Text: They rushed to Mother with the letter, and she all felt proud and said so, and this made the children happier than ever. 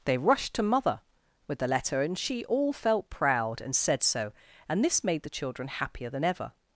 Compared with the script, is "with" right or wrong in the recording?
right